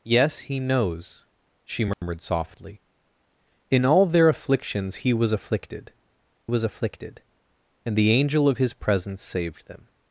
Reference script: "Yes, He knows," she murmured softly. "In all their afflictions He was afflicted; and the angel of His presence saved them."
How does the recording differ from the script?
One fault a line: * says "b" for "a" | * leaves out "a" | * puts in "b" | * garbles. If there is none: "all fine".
* puts in "was afflicted"